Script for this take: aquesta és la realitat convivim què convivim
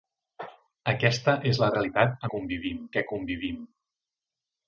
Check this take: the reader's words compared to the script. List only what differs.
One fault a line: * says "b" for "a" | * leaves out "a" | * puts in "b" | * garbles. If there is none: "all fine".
all fine